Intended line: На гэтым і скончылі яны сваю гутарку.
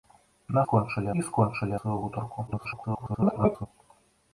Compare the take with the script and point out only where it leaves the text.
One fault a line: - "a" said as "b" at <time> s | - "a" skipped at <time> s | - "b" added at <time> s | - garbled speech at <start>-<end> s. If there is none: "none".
- "гэтым" said as "скончылі" at 0.6 s
- "яны" skipped at 1.8 s
- garbled speech at 2.5-3.7 s